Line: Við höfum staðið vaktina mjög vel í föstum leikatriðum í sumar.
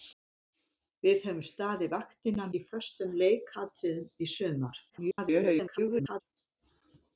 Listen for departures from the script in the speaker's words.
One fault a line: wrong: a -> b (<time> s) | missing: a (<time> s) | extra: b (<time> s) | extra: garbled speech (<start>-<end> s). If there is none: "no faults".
missing: mjög vel (2.5 s)
extra: garbled speech (4.9-6.2 s)